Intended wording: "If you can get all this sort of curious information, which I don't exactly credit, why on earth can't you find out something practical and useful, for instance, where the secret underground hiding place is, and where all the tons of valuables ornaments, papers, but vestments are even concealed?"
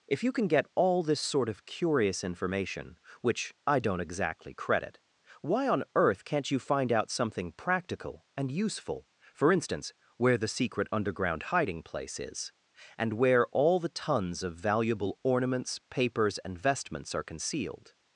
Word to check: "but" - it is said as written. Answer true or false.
false